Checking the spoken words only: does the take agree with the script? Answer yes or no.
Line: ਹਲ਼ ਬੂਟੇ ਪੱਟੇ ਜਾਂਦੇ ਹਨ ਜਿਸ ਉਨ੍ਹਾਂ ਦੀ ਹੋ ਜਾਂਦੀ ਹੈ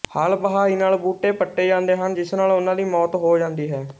no